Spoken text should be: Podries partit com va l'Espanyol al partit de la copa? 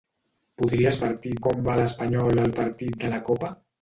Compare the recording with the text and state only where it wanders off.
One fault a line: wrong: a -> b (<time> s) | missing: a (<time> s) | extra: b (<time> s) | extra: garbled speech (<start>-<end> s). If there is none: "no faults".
no faults